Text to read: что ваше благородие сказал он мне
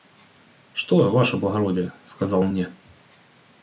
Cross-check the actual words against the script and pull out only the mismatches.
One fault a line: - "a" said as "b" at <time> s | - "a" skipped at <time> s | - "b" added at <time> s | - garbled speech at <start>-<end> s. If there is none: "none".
none